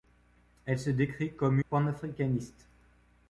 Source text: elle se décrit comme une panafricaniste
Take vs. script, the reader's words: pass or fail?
fail